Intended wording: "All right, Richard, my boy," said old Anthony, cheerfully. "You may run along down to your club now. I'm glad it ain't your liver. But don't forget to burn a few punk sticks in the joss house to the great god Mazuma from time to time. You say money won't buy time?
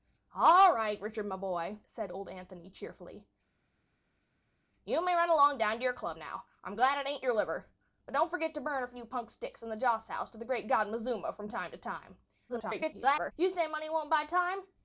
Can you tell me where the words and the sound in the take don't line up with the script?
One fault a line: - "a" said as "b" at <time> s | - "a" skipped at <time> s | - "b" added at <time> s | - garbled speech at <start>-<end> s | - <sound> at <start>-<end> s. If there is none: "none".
- garbled speech at 12.5-13.3 s